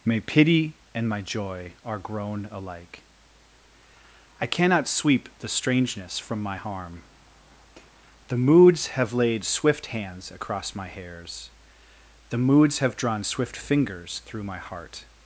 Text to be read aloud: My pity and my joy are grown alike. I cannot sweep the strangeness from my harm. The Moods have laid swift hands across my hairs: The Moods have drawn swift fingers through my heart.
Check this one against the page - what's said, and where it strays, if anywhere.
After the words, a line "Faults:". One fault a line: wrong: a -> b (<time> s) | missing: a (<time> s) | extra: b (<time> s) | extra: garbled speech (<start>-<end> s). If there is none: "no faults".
My pity and my joy are grown alike. I cannot sweep the strangeness from my harm. The Moods have laid swift hands across my hairs: The Moods have drawn swift fingers through my heart.
Faults:
no faults